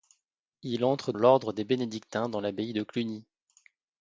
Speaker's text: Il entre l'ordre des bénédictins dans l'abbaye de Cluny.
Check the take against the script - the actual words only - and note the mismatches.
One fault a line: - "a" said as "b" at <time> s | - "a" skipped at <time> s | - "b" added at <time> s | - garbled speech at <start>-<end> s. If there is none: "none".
none